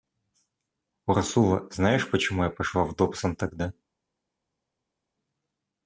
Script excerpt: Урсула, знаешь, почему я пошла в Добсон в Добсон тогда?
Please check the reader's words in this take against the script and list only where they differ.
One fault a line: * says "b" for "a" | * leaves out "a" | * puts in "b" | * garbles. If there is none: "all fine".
* leaves out "в Добсон"